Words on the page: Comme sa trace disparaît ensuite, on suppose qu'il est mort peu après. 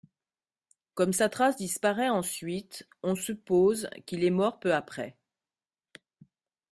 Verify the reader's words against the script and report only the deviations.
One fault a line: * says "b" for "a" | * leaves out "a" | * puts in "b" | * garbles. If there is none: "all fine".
all fine